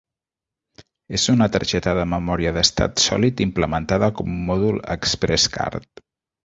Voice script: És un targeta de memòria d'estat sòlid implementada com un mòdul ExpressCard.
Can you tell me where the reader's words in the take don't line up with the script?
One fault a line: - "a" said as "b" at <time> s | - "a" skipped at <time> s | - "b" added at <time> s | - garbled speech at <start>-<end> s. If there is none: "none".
- "un" said as "una" at 1.3 s